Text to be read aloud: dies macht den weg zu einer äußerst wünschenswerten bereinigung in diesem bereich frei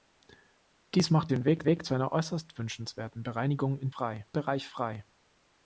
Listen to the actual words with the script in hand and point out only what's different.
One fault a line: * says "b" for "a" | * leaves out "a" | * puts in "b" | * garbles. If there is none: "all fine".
* puts in "weg"
* says "frei" for "diesem"